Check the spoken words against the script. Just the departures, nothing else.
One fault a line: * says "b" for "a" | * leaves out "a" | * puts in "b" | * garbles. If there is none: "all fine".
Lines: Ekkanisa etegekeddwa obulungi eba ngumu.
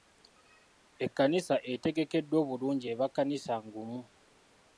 * puts in "kkanisa"